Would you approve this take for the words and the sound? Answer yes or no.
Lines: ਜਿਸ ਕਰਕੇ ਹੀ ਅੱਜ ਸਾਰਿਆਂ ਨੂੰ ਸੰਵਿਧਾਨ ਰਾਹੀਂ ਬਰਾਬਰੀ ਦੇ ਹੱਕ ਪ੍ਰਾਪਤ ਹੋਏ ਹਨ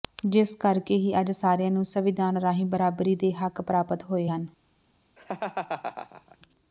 no